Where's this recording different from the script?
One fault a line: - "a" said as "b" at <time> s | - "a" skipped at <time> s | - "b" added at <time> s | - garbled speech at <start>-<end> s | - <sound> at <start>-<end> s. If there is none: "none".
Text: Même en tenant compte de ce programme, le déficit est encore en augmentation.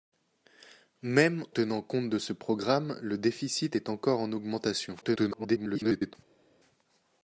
- "en" skipped at 1.4 s
- garbled speech at 5.0-6.2 s